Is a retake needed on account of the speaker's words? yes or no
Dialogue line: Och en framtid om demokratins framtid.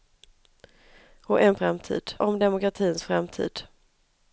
no